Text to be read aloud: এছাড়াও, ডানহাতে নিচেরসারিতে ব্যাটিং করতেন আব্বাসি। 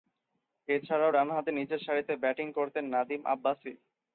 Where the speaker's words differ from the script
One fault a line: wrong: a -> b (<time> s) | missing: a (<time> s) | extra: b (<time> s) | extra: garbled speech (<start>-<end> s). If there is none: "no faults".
extra: নাদিম (2.9 s)